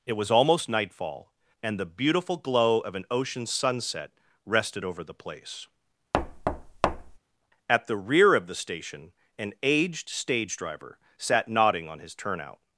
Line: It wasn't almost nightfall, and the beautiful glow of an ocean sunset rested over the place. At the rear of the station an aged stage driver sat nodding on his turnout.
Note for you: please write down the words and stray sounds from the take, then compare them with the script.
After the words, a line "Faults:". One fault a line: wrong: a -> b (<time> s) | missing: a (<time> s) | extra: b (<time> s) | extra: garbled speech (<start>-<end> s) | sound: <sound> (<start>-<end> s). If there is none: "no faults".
It was almost nightfall, and the beautiful glow of an ocean sunset rested over the place. At the rear of the station an aged stage driver sat nodding on his turnout.
Faults:
wrong: wasn't -> was (0.1 s)
sound: thud (6.1-7.2 s)